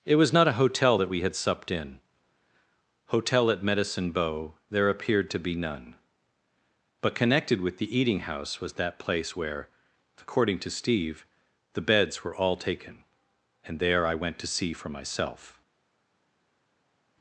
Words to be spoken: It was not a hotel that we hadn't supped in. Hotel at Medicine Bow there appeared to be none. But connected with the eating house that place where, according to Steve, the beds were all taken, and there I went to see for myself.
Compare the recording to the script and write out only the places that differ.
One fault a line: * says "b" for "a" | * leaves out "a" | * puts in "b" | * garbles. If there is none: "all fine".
* says "had" for "hadn't"
* puts in "was"